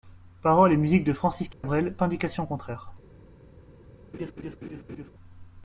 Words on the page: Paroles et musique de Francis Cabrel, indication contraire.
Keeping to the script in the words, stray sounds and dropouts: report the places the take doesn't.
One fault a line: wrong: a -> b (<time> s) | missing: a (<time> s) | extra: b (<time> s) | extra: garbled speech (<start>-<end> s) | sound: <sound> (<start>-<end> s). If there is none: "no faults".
sound: dropout (1.5-1.6 s)
sound: laugh (4.1-5.1 s)